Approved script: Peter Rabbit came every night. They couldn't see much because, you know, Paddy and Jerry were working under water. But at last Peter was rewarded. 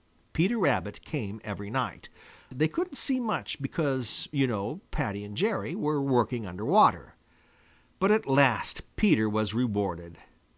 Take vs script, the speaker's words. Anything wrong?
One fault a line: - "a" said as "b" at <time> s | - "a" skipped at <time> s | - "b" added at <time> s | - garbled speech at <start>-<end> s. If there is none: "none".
none